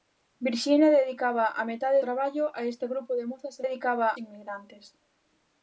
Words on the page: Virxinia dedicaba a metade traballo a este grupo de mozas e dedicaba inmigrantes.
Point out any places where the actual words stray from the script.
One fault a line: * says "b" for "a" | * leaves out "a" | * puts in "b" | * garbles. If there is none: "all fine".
all fine